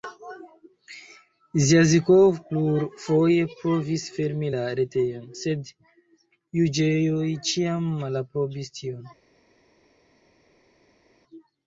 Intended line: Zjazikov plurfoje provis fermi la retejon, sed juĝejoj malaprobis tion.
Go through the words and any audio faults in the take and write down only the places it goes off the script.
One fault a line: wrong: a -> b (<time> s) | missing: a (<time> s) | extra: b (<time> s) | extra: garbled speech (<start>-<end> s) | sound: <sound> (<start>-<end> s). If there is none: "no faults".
extra: ĉiam (7.5 s)